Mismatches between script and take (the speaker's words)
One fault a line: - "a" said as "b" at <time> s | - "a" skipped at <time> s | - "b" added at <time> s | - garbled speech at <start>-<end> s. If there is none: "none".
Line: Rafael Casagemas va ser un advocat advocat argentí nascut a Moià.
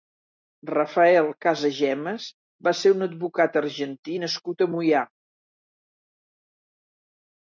- "advocat" skipped at 3.6 s